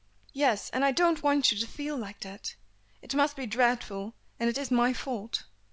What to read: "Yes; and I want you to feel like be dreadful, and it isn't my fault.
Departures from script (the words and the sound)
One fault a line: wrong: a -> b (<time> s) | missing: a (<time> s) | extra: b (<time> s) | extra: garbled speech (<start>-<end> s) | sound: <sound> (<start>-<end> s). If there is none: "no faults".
extra: don't (0.9 s)
extra: that It must (2.2 s)
wrong: isn't -> is (4.6 s)